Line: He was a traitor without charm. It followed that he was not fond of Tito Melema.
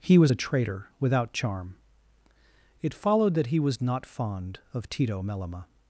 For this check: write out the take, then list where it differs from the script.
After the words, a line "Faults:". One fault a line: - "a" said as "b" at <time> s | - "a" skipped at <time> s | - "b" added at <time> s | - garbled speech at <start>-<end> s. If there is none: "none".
He was a traitor without charm. It followed that he was not fond of Tito Melema.
Faults:
none